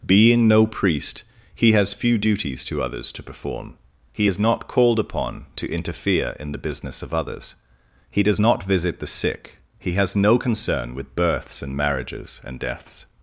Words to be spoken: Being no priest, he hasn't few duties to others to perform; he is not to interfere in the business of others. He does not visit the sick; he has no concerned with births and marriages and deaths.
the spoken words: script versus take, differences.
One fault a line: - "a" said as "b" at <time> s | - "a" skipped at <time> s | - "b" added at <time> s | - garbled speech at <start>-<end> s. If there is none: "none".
- "hasn't" said as "has" at 1.7 s
- "called upon" added at 4.7 s
- "concerned" said as "concern" at 10.4 s